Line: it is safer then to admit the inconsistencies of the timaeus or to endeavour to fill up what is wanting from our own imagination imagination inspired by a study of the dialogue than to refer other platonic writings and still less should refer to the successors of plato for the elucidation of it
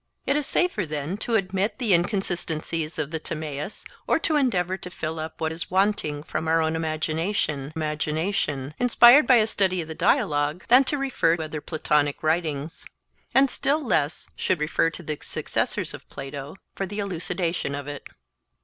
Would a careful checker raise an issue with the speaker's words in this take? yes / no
no